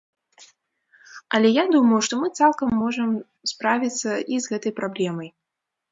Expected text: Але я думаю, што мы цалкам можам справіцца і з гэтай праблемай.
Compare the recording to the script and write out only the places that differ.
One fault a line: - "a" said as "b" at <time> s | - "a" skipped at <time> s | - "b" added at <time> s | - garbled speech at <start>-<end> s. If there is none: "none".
none